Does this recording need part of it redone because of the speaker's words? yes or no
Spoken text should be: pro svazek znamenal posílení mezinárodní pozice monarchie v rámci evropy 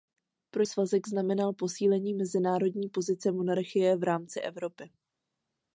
no